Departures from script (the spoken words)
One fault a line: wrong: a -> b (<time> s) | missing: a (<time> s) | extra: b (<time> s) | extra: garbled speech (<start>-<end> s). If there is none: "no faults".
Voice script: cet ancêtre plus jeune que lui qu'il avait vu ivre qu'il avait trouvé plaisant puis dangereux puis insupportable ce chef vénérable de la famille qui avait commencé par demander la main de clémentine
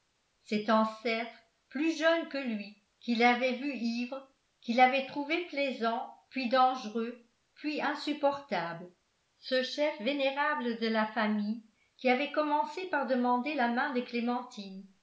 no faults